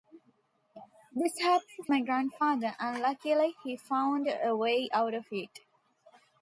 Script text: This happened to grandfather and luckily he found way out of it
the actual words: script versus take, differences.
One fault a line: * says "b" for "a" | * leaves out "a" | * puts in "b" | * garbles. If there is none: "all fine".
* puts in "my"
* puts in "a"